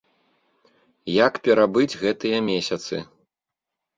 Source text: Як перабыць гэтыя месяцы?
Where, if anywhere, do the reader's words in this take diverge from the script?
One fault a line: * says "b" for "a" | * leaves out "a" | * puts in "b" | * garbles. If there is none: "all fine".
all fine